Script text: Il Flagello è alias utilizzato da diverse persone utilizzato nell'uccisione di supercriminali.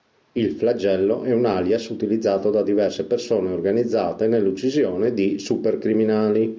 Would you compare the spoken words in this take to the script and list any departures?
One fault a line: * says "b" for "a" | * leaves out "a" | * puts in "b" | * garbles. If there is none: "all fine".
* puts in "un"
* says "organizzate" for "utilizzato"